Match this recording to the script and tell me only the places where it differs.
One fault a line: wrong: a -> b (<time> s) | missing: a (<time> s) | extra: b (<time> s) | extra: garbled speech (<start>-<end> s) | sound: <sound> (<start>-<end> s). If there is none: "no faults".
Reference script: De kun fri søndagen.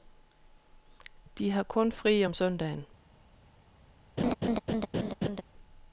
extra: har (1.5 s)
extra: om (2.2 s)
sound: laugh (4.2-5.4 s)